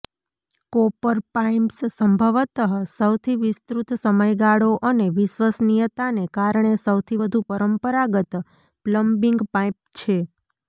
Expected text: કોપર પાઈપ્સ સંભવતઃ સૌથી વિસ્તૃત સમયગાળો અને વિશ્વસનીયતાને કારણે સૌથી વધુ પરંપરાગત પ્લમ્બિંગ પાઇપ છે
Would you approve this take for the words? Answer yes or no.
yes